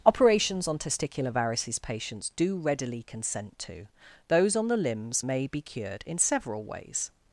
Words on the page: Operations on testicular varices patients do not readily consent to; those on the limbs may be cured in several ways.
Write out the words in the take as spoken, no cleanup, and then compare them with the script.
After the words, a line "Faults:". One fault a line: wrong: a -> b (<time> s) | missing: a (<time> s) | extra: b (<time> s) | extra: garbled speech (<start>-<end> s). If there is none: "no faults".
Operations on testicular varices patients do readily consent to; those on the limbs may be cured in several ways.
Faults:
missing: not (2.6 s)